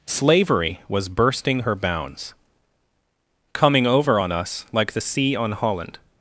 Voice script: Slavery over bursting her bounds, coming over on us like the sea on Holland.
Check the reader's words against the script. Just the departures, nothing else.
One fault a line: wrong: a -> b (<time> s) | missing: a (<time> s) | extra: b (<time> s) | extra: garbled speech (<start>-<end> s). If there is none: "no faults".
wrong: over -> was (0.9 s)